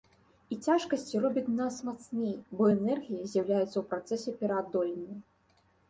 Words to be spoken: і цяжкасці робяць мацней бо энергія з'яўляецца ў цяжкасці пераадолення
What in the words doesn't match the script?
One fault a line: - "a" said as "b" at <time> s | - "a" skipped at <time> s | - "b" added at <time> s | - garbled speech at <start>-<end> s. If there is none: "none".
- "нас" added at 1.6 s
- "цяжкасці" said as "працэсе" at 3.9 s